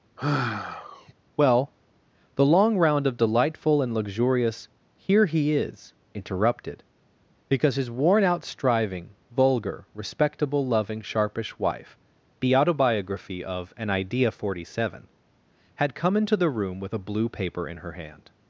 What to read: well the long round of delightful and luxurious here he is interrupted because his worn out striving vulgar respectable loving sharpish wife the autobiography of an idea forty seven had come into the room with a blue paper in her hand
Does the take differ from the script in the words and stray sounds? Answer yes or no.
yes